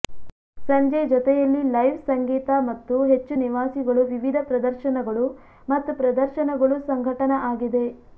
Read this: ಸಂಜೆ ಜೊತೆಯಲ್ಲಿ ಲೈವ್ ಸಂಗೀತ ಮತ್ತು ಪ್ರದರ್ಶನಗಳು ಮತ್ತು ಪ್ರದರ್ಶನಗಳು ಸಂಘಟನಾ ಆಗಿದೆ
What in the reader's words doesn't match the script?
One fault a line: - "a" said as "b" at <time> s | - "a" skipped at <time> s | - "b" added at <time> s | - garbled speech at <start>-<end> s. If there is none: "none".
- "ಹೆಚ್ಚು ನಿವಾಸಿಗಳು ವಿವಿಧ" added at 3.1 s